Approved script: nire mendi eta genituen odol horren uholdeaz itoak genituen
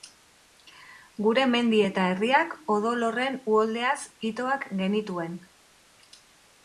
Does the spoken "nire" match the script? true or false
false